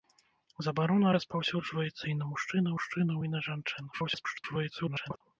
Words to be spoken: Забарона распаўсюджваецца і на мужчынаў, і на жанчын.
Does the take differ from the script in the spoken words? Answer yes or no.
yes